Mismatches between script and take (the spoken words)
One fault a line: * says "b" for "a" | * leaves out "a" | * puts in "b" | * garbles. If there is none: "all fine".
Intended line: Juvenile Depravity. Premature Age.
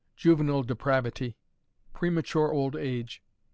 * puts in "Old"